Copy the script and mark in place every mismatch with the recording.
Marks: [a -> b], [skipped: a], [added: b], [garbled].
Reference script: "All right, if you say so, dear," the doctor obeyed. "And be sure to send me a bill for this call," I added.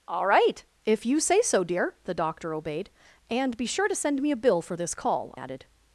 "All right, if you say so, dear," the doctor obeyed. "And be sure to send me a bill for this call," [skipped: I] added.